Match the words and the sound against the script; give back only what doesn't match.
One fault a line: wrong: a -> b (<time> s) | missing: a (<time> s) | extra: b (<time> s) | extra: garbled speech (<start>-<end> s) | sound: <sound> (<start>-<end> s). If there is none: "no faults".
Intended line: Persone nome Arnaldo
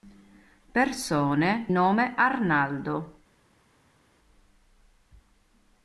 no faults